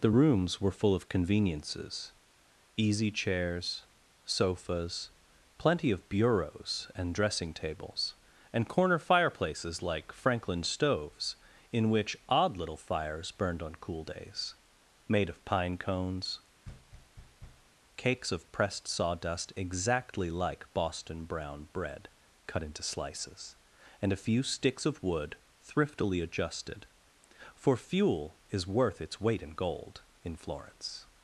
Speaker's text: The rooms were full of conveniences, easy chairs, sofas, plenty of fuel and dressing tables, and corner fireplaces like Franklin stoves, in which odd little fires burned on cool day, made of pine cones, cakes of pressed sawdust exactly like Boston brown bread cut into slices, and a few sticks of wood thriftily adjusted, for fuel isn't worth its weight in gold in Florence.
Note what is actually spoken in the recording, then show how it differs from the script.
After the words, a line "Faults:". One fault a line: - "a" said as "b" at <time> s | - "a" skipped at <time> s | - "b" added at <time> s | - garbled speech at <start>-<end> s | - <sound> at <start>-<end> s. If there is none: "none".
The rooms were full of conveniences, easy chairs, sofas, plenty of bureaus and dressing tables, and corner fireplaces like Franklin stoves, in which odd little fires burned on cool days, made of pine cones, cakes of pressed sawdust exactly like Boston brown bread cut into slices, and a few sticks of wood thriftily adjusted, for fuel is worth its weight in gold in Florence.
Faults:
- "fuel" said as "bureaus" at 6.1 s
- "day" said as "days" at 14.0 s
- thud at 16.6-17.7 s
- "isn't" said as "is" at 28.5 s